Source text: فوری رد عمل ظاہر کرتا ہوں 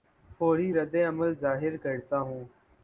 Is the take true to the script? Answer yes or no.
yes